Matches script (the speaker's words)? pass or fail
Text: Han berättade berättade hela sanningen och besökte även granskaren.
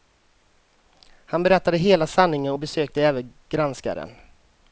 fail